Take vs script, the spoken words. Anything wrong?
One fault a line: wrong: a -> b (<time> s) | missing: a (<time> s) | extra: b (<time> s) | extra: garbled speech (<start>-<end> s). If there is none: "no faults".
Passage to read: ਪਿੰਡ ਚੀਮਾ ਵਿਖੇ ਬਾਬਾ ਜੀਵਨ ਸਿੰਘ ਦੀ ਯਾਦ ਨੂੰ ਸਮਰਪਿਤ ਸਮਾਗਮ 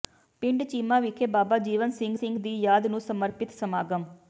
extra: ਸਿੰਘ (2.1 s)